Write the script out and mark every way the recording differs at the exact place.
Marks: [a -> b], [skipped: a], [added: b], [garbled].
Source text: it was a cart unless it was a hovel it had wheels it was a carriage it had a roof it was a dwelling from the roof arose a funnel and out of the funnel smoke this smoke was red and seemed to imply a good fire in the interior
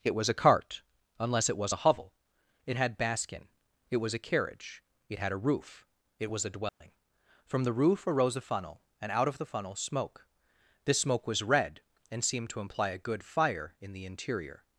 it was a cart unless it was a hovel it had [wheels -> baskin] it was a carriage it had a roof it was a dwelling from the roof arose a funnel and out of the funnel smoke this smoke was red and seemed to imply a good fire in the interior